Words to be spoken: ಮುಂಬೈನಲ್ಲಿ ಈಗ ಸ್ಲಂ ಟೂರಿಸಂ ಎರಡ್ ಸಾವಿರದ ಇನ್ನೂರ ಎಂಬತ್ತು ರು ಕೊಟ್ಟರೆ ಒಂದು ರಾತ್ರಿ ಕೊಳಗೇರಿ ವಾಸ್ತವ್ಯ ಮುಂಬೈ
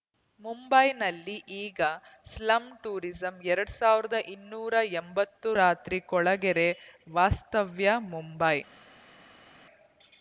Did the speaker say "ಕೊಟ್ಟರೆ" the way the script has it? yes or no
no